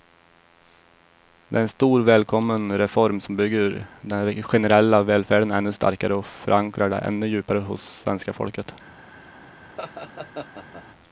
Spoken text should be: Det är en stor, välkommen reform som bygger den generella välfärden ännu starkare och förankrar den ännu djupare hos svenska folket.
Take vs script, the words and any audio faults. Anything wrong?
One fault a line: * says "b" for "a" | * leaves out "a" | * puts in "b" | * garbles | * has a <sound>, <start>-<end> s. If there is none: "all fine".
* has a laugh, 9.8-10.8 s